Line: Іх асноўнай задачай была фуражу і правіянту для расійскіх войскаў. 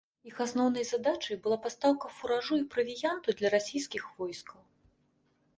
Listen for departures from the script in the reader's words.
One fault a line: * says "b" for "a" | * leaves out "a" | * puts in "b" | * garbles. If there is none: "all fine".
* puts in "пастаўка"